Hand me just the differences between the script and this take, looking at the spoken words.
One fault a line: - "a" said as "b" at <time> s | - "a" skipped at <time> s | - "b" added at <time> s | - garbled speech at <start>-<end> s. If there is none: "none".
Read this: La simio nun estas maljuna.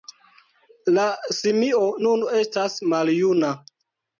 none